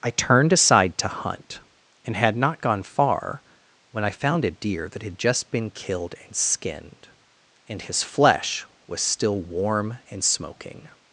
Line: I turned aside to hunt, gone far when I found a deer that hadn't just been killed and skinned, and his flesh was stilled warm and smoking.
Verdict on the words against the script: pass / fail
fail